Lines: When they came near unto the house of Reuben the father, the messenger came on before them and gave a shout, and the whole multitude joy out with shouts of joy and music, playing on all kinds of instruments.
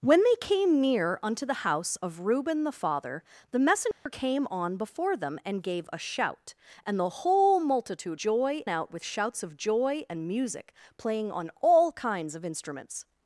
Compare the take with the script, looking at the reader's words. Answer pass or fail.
pass